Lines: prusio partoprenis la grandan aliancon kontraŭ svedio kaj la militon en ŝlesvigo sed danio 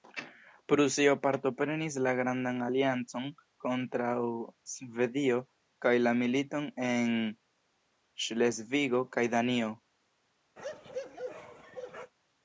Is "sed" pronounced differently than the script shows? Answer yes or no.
yes